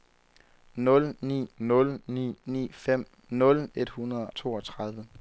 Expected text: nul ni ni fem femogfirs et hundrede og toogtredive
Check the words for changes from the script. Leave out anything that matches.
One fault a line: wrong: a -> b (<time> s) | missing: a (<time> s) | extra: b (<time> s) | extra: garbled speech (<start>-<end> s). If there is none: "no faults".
extra: nul (1.6 s)
extra: ni (2.5 s)
wrong: femogfirs -> nul (3.3 s)
missing: og (4.3 s)